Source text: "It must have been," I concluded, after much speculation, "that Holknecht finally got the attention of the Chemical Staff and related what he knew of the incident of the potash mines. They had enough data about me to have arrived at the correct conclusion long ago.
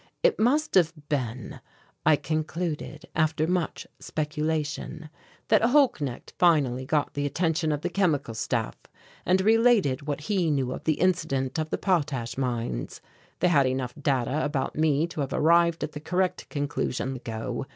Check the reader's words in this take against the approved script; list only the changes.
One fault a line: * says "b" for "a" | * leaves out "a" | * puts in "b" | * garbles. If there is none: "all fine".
* leaves out "long"